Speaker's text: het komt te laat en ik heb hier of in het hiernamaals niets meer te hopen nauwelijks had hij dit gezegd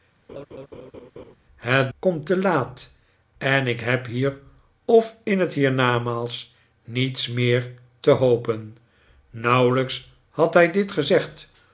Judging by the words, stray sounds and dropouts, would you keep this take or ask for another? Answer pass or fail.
fail